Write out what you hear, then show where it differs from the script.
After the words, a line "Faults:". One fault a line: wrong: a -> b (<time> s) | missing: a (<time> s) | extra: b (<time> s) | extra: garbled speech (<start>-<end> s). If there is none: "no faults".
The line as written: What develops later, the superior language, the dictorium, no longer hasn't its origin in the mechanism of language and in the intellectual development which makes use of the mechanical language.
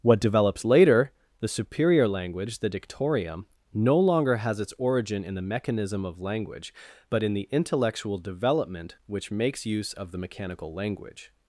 What develops later, the superior language, the dictorium, no longer has its origin in the mechanism of language but in the intellectual development which makes use of the mechanical language.
Faults:
wrong: hasn't -> has (4.4 s)
wrong: and -> but (7.1 s)